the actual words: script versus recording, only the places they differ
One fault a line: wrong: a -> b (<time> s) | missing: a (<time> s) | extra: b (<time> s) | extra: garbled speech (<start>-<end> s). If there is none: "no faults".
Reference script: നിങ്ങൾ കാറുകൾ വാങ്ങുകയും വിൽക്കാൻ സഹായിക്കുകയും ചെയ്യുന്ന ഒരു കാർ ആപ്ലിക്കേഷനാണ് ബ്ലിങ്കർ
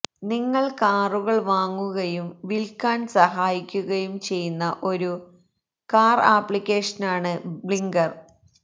no faults